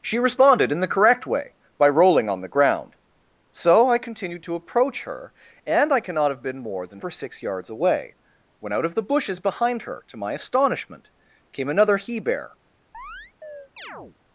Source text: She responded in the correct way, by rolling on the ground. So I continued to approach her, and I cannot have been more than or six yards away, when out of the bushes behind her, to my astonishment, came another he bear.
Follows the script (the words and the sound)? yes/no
no